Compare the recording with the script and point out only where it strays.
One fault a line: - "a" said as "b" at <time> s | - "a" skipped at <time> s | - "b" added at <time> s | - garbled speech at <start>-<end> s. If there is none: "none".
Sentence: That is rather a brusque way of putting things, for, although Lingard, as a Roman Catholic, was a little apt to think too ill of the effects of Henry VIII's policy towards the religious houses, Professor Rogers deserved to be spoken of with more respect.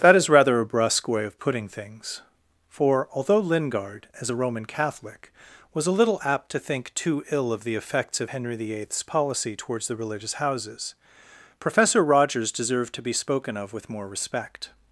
none